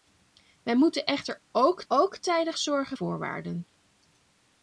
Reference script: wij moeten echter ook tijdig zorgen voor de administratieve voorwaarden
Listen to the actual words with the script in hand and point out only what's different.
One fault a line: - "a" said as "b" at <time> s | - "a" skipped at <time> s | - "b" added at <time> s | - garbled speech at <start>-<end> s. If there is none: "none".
- "ook" added at 1.9 s
- "voor de administratieve" skipped at 3.0 s